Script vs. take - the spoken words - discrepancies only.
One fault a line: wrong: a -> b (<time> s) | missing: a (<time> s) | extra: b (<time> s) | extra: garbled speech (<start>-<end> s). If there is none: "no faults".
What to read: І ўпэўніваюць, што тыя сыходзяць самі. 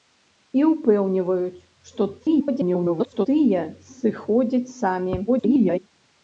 extra: garbled speech (2.2-3.3 s)
extra: garbled speech (5.3-5.8 s)